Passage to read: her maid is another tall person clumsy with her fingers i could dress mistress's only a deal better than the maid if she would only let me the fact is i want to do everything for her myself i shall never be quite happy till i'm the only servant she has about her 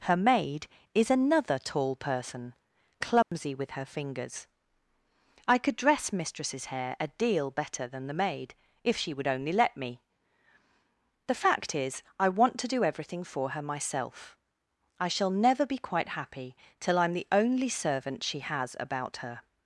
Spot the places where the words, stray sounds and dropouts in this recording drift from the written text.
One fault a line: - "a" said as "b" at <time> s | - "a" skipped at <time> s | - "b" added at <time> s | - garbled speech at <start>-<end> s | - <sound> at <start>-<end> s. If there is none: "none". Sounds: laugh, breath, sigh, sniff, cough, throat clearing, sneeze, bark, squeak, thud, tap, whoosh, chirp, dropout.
- dropout at 3.2-3.3 s
- "only" said as "hair" at 6.7 s